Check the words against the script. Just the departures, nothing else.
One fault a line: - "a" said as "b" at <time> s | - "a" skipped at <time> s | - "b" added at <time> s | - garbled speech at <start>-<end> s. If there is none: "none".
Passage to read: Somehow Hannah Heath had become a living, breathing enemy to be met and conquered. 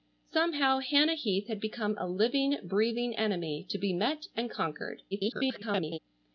- garbled speech at 5.1-6.0 s